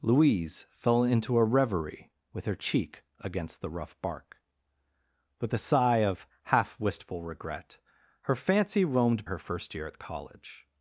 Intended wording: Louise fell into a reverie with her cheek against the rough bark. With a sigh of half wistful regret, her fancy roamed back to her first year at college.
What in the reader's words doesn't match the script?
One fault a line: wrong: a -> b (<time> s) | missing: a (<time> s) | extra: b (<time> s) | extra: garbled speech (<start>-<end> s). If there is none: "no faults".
missing: back to (9.3 s)